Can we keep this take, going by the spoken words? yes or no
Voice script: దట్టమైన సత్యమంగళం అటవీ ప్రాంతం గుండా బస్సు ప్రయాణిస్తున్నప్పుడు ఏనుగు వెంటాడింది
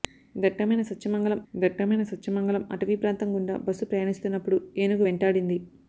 no